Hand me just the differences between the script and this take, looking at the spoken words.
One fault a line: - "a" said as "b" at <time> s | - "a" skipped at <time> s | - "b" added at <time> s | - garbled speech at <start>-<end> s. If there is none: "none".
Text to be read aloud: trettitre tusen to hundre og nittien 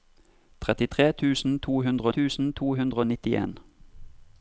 - "tusen to hundre" added at 2.1 s